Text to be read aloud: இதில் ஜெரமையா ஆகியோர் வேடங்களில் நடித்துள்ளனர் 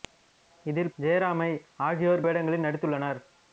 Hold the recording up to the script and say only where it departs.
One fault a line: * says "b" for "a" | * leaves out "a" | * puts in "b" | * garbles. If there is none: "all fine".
all fine